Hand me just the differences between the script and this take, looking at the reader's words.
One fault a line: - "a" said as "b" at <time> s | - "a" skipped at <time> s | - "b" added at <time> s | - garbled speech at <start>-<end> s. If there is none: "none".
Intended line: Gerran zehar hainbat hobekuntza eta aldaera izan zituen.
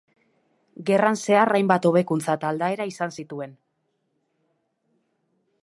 none